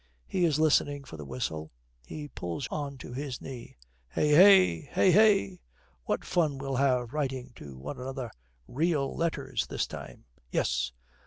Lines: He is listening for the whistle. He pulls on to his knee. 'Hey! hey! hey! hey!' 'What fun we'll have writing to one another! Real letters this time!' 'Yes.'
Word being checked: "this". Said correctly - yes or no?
yes